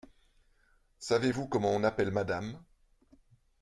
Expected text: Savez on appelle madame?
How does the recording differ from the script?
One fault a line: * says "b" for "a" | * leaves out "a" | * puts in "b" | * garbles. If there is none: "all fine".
* puts in "vous comment"